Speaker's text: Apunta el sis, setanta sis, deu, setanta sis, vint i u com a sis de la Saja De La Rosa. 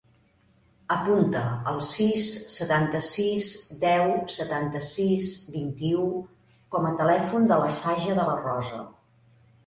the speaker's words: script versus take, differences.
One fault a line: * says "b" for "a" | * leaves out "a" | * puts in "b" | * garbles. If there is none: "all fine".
* says "telèfon" for "sis"